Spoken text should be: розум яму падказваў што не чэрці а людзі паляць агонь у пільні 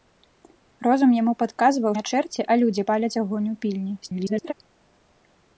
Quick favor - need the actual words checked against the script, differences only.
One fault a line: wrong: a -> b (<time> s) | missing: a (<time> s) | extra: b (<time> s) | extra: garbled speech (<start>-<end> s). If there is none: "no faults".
missing: што (1.9 s)
extra: garbled speech (4.0-4.5 s)